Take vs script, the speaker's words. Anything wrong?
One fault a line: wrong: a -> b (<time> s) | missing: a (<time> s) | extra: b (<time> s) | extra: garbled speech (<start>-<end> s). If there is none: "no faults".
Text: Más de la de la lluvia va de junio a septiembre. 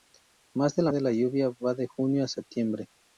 no faults